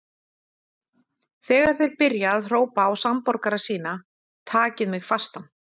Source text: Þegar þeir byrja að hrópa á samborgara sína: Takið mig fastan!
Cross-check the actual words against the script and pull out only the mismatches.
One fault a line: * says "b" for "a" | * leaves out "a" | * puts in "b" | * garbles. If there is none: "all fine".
all fine